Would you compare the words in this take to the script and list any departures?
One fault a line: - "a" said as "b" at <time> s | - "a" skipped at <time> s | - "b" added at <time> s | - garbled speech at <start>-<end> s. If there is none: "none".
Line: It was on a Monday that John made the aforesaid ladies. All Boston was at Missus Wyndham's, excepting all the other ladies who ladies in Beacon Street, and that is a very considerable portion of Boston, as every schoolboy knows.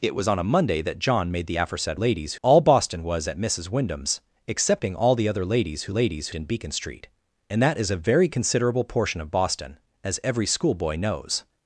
none